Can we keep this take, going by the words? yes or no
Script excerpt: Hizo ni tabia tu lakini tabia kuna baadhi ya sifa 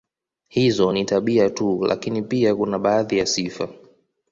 no